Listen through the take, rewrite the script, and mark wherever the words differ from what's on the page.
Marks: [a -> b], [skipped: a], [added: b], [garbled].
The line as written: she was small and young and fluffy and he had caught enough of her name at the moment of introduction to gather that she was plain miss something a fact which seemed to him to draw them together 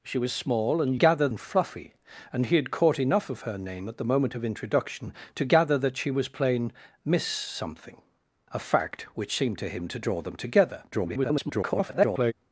she was small and [young -> gather] and fluffy and he had caught enough of her name at the moment of introduction to gather that she was plain miss something a fact which seemed to him to draw them together [garbled]